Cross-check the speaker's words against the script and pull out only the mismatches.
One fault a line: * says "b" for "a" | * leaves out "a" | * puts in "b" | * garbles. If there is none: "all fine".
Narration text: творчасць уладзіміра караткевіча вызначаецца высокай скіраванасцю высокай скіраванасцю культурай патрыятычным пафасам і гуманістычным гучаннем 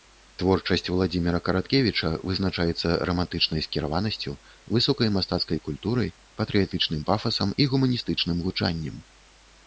* says "рамантычнай" for "высокай"
* says "мастацкай" for "скіраванасцю"